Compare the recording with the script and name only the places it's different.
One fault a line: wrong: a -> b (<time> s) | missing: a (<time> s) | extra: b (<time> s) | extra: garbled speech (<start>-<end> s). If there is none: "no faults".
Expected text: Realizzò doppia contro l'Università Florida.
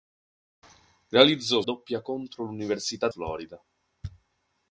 no faults